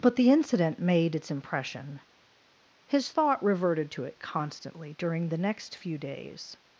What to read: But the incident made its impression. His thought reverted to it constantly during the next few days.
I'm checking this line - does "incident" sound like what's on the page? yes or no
yes